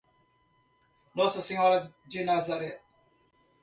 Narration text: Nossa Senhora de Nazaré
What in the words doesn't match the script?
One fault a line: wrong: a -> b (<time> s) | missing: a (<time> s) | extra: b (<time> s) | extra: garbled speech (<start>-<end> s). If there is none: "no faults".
no faults